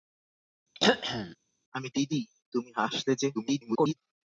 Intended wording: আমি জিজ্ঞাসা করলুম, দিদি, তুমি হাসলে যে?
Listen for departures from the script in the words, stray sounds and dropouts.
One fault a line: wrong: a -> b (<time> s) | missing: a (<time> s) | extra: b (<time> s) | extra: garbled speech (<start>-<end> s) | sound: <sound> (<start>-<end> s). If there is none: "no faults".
sound: throat clearing (0.7-1.4 s)
missing: জিজ্ঞাসা করলুম (1.9 s)
extra: garbled speech (3.3-4.0 s)